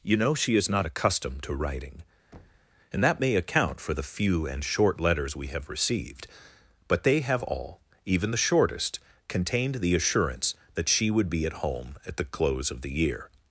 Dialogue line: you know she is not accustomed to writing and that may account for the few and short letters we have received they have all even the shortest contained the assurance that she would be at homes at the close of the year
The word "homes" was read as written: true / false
false